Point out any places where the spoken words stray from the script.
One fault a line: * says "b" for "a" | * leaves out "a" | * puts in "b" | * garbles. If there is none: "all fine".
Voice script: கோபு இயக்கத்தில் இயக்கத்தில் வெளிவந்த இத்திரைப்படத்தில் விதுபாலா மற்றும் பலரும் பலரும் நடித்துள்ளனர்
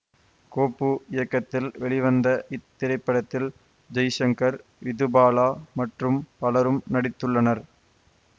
* leaves out "இயக்கத்தில்"
* puts in "ஜெய்சங்கர்"
* leaves out "பலரும்"